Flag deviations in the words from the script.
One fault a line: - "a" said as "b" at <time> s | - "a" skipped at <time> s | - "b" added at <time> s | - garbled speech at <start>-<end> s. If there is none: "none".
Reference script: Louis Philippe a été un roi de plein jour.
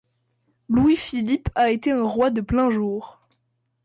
none